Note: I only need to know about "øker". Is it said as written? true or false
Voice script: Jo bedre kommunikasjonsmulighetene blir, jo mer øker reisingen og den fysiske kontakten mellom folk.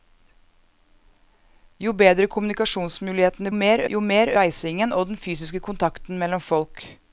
false